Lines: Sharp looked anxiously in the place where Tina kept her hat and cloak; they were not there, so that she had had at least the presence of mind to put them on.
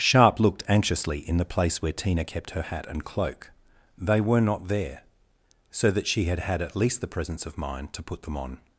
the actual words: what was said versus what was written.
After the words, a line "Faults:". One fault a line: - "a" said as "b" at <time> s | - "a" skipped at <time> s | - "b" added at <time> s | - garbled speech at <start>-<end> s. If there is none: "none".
Sharp looked anxiously in the place where Tina kept her hat and cloak; they were not there, so that she had had at least the presence of mind to put them on.
Faults:
none